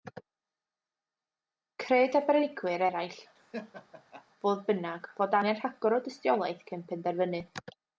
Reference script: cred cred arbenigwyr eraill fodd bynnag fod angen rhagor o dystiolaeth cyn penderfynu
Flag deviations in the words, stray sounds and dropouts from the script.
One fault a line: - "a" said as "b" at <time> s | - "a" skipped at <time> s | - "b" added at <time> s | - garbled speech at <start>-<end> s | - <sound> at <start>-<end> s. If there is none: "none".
- "cred" skipped at 2.2 s
- laugh at 3.4-4.2 s